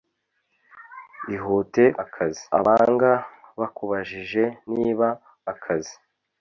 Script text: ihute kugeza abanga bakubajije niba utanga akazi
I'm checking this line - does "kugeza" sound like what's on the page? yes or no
no